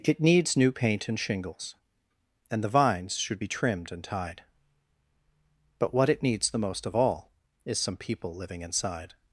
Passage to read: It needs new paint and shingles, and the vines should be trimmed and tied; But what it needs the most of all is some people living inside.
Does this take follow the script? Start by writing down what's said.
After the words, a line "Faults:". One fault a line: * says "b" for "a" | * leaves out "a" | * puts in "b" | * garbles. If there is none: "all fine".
It needs new paint and shingles, and the vines should be trimmed and tied; But what it needs the most of all is some people living inside.
Faults:
all fine